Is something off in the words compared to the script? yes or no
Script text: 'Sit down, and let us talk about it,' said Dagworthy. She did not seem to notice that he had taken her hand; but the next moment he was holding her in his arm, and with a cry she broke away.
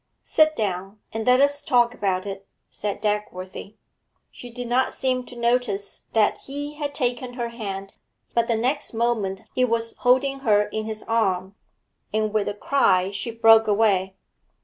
no